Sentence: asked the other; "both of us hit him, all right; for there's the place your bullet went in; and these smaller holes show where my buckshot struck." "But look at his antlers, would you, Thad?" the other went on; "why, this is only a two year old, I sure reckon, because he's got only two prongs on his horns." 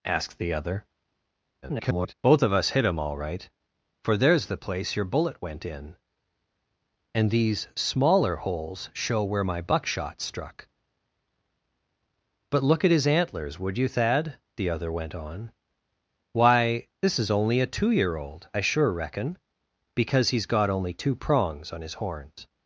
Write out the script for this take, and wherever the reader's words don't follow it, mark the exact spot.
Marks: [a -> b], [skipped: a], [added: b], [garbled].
asked the other; [garbled] "both of us hit him, all right; for there's the place your bullet went in; and these smaller holes show where my buckshot struck." "But look at his antlers, would you, Thad?" the other went on; "why, this is only a two year old, I sure reckon, because he's got only two prongs on his horns."